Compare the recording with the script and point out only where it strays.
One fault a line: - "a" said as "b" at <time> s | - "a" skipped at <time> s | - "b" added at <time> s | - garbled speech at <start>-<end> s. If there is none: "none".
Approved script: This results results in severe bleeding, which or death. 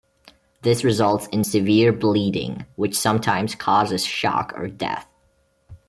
- "results" skipped at 1.3 s
- "sometimes causes shock" added at 3.0 s